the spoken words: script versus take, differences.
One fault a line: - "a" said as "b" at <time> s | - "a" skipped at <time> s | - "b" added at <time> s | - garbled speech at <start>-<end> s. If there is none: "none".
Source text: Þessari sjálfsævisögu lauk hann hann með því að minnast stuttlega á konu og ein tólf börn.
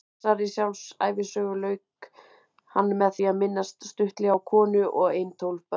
- "hann" skipped at 2.9 s